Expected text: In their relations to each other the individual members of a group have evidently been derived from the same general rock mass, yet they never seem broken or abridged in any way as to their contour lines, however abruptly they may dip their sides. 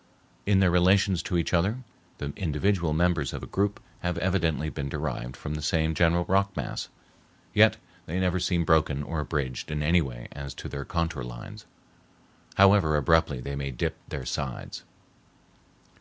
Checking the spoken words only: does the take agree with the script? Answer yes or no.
yes